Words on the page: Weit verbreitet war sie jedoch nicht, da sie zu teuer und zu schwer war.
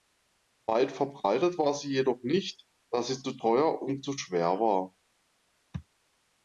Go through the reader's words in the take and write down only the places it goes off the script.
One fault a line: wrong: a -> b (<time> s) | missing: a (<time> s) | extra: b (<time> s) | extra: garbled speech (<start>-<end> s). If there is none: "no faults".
no faults